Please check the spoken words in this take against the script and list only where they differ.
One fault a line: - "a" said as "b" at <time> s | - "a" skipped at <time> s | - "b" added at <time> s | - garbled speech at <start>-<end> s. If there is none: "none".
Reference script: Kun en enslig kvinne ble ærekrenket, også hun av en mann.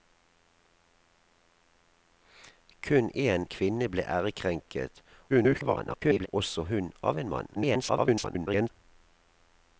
- "enslig" skipped at 3.5 s
- garbled speech at 5.3-6.3 s
- garbled speech at 7.5-8.7 s